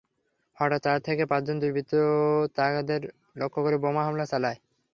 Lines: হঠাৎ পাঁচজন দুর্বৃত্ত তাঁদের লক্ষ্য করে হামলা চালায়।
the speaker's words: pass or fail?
fail